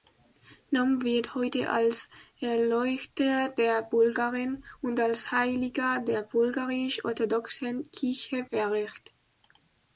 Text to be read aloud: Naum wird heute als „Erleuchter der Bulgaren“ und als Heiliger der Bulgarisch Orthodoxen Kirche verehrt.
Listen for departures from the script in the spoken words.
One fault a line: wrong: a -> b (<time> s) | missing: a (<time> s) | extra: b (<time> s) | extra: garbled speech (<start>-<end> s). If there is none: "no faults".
no faults